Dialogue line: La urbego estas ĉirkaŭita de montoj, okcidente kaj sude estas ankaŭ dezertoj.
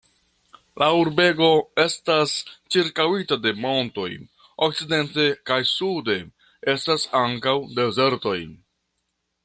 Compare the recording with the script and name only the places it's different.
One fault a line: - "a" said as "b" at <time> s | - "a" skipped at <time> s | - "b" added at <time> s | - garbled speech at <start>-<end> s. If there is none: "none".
none